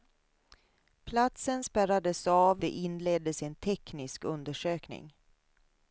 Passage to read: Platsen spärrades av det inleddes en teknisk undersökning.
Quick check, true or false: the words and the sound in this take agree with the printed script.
true